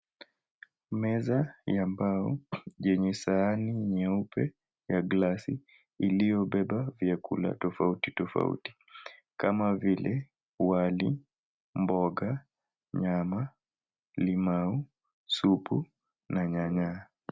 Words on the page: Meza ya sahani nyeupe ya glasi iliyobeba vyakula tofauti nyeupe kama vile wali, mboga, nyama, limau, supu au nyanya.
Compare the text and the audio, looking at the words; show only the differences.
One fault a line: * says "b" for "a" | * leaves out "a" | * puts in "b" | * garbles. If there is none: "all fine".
* puts in "mbao yenye"
* says "tofauti" for "nyeupe"
* says "na" for "au"